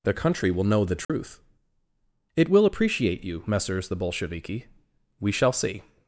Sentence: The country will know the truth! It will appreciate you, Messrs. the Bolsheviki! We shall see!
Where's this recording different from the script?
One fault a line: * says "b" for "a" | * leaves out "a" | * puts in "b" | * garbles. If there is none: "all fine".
all fine